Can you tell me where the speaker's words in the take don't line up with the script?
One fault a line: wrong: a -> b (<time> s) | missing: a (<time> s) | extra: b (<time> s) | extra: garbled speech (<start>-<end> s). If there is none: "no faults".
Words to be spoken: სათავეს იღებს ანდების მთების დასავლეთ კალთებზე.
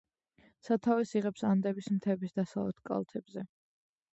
no faults